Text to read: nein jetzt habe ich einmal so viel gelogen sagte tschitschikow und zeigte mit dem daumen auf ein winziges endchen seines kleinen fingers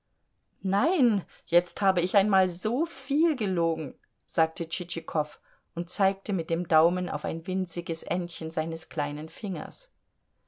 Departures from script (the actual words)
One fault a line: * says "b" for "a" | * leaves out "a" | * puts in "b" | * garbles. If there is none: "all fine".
all fine